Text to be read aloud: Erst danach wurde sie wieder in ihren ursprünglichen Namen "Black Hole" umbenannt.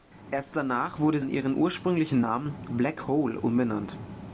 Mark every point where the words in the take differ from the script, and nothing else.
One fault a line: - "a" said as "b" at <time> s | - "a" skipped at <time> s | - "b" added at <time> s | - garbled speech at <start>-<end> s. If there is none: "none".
- "sie wieder" skipped at 1.2 s